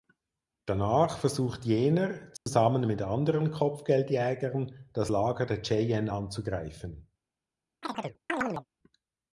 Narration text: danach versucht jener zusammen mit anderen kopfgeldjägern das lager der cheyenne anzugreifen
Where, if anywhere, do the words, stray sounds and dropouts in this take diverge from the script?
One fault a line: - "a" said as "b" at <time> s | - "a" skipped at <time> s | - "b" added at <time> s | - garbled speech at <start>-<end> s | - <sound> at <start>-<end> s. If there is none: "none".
- dropout at 2.4-2.5 s
- chirp at 7.8-8.7 s